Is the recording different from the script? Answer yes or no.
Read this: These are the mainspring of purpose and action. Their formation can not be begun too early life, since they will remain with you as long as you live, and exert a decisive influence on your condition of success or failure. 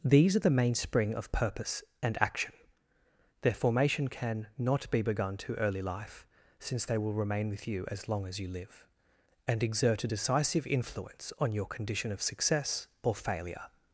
no